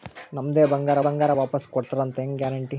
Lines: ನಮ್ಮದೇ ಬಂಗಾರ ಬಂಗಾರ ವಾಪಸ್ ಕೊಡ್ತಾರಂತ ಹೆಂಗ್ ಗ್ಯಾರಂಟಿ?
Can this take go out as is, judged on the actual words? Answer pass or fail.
pass